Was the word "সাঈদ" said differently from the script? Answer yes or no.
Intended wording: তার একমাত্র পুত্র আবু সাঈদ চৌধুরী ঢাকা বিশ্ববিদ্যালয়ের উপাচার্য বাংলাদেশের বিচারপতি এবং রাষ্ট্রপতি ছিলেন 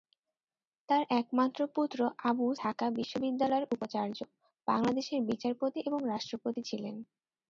yes